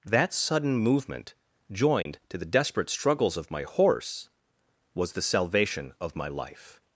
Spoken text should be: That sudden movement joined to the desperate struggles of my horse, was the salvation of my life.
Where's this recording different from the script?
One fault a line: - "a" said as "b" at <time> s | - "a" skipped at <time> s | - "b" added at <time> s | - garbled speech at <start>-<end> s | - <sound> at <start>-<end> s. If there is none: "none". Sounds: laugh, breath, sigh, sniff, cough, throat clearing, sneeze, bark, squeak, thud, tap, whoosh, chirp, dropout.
- dropout at 2.0-2.1 s